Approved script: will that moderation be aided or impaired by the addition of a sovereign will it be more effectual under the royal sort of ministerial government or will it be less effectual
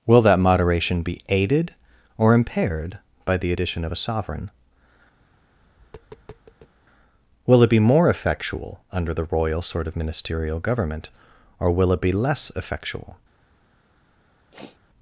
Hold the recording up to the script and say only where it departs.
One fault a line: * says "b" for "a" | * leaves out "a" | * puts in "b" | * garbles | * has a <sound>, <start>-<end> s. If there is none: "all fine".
* has a tap, 5.2-6.7 s
* has a sniff, 14.5-14.8 s